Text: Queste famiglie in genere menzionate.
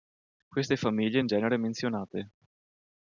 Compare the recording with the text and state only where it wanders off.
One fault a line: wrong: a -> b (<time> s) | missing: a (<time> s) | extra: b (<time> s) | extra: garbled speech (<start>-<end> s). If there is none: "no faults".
no faults